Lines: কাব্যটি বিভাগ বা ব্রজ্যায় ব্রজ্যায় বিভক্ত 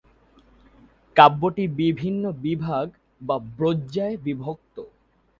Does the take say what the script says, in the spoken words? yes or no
no